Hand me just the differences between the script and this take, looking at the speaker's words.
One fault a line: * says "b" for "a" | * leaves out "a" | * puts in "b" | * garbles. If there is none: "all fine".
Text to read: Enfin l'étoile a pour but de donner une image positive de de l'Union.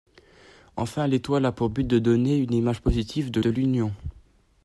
all fine